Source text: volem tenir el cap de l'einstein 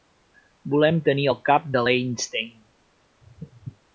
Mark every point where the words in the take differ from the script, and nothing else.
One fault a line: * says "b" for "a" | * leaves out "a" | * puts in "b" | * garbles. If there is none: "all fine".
all fine